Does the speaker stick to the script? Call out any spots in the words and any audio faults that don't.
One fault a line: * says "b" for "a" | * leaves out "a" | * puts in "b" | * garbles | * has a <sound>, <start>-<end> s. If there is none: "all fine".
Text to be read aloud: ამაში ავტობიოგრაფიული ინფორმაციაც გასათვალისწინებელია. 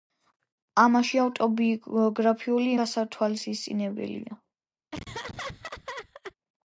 * leaves out "ინფორმაციაც"
* has a laugh, 4.9-6.3 s